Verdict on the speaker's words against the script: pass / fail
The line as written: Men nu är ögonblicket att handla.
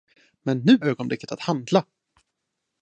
fail